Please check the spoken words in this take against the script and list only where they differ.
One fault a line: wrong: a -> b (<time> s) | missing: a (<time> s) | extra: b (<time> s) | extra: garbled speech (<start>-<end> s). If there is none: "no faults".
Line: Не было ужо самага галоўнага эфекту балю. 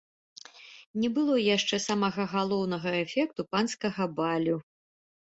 wrong: ужо -> яшчэ (1.6 s)
extra: панскага (3.6 s)